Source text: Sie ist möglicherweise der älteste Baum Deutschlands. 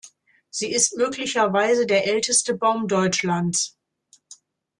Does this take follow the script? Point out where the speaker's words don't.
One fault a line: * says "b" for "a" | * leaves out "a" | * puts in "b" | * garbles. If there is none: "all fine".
all fine